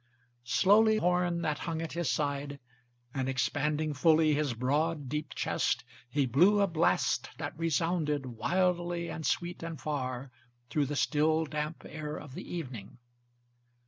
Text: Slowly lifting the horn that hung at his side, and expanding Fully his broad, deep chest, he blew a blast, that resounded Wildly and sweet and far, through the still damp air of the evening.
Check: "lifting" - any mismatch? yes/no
yes